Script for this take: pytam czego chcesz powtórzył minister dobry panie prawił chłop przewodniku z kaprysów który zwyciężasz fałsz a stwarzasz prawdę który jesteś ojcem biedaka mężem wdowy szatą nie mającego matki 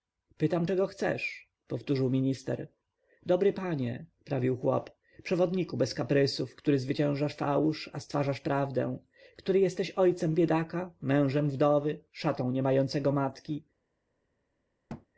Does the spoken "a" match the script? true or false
true